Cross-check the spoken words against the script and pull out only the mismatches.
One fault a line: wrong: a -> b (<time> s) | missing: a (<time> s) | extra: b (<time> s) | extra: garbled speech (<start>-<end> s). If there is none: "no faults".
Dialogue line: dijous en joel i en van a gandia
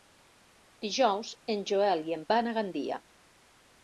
no faults